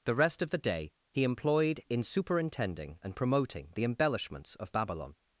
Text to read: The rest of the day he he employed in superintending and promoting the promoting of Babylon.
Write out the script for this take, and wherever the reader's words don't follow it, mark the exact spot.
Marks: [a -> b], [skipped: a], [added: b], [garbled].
The rest of the day he [skipped: he] employed in superintending and promoting the [promoting -> embellishments] of Babylon.